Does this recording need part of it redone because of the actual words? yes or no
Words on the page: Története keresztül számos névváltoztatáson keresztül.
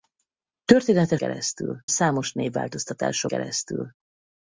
no